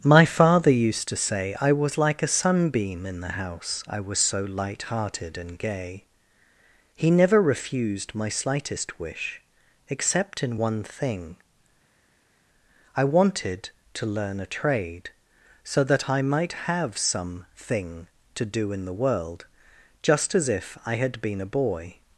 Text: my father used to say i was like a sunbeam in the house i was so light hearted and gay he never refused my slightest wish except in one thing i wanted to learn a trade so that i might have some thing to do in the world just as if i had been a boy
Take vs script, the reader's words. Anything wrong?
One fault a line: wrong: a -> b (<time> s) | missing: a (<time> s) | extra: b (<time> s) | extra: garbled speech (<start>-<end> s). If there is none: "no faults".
no faults